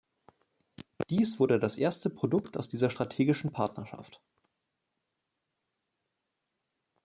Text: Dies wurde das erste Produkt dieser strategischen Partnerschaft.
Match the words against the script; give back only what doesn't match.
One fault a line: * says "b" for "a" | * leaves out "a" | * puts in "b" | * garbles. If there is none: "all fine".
* puts in "aus"